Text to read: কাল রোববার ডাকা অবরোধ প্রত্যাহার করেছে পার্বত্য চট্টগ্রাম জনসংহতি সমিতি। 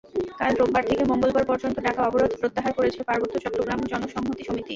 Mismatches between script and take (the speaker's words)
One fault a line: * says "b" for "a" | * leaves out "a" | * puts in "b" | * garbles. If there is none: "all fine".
* puts in "থেকে মঙ্গলবার পর্যন্ত"